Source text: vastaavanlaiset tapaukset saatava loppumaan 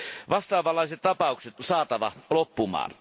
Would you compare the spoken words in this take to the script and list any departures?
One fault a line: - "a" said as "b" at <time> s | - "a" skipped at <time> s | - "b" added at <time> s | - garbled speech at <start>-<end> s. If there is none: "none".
none